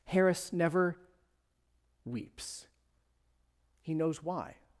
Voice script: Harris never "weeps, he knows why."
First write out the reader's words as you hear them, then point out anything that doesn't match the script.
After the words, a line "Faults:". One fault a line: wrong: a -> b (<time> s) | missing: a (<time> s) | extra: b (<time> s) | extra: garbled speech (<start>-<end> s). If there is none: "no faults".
Harris never "weeps, he knows why."
Faults:
no faults